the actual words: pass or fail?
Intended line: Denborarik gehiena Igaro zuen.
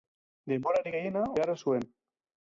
pass